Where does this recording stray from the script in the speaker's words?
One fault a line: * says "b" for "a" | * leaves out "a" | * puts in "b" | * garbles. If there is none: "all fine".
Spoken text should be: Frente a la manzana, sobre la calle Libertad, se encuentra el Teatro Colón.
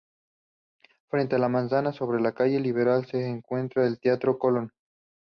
all fine